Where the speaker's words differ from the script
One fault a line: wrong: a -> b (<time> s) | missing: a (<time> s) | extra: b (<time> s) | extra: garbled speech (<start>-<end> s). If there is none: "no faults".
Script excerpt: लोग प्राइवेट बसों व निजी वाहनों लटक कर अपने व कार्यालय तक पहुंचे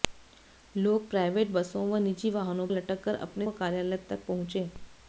no faults